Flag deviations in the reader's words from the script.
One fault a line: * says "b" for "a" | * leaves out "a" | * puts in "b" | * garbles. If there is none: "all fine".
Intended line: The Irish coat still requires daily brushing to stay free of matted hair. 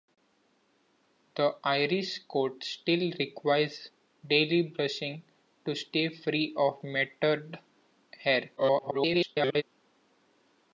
* garbles